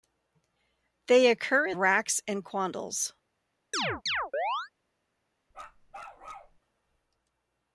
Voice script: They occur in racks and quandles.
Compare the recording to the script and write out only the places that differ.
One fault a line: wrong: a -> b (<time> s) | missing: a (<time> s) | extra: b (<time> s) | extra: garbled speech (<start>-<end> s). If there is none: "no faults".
no faults